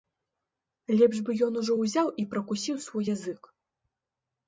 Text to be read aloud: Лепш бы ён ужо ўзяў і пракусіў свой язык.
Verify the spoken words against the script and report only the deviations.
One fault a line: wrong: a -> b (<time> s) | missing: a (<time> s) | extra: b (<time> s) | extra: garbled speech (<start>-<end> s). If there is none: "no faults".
no faults